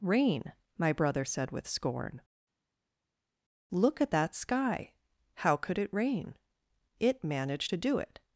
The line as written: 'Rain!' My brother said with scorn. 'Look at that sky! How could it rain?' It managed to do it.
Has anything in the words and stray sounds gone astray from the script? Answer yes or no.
no